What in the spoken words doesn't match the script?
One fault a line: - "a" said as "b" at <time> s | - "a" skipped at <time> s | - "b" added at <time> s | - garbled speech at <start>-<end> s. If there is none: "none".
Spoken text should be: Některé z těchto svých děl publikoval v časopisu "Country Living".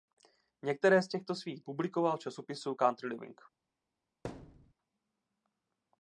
- "děl" skipped at 1.6 s